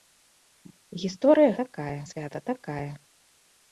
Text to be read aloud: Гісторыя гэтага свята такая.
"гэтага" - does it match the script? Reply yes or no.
no